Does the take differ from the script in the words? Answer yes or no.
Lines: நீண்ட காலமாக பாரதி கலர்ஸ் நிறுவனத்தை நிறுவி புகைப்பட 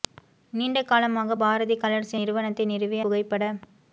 no